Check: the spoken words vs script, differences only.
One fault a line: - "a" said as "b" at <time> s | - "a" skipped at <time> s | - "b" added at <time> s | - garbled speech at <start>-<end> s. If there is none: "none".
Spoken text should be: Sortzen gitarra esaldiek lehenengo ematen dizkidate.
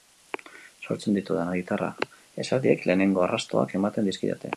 - "ditudan" added at 1.2 s
- "arrastoak" added at 3.3 s